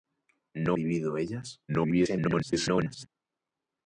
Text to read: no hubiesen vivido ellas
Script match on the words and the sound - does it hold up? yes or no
no